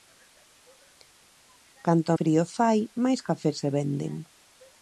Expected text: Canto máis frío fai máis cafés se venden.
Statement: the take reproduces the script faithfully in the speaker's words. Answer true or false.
false